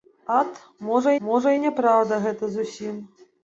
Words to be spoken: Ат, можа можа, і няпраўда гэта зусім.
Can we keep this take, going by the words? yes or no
yes